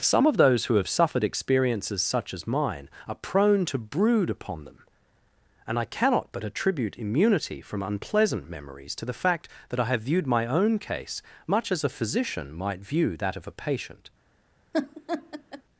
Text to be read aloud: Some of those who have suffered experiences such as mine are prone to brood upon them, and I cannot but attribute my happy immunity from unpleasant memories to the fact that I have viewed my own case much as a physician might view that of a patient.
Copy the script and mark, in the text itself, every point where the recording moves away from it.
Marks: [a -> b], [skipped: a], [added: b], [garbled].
Some of those who have suffered experiences such as mine are prone to brood upon them, and I cannot but attribute [skipped: my happy] immunity from unpleasant memories to the fact that I have viewed my own case much as a physician might view that of a patient.